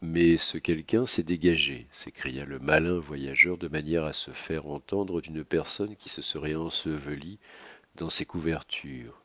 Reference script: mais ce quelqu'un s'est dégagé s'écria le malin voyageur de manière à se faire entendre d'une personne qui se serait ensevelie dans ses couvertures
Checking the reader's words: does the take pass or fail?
pass